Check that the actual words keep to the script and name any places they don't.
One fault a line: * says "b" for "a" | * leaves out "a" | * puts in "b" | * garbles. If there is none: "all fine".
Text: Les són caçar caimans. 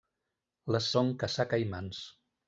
all fine